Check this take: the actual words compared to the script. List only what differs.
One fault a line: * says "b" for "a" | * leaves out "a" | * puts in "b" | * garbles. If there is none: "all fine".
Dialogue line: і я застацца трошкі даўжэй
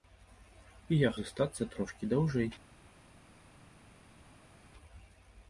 all fine